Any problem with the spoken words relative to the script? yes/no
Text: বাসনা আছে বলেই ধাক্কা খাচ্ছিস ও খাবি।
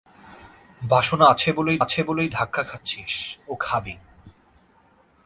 yes